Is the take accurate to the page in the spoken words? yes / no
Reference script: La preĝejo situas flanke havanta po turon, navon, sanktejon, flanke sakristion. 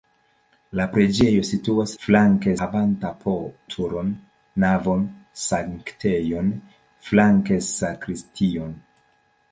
yes